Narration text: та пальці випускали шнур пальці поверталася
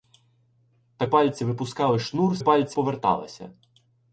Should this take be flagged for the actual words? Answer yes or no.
no